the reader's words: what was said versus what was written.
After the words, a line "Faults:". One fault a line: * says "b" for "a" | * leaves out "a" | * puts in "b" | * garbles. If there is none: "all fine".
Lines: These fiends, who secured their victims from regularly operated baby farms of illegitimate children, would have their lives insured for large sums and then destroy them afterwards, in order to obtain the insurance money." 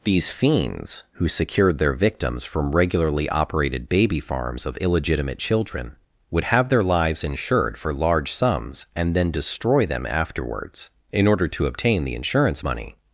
These fiends, who secured their victims from regularly operated baby farms of illegitimate children, would have their lives insured for large sums and then destroy them afterwards, in order to obtain the insurance money."
Faults:
all fine